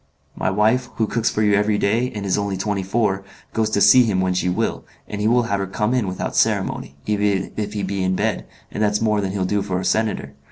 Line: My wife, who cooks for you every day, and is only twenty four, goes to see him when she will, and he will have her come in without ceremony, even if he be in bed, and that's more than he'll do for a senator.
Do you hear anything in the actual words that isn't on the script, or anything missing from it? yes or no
no